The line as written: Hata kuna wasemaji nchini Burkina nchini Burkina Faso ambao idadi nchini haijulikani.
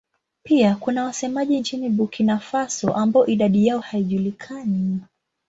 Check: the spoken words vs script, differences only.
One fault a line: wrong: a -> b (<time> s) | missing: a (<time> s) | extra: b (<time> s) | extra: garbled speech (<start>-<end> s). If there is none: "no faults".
wrong: Hata -> Pia (0.4 s)
missing: nchini Burkina (2.4 s)
wrong: nchini -> yao (3.7 s)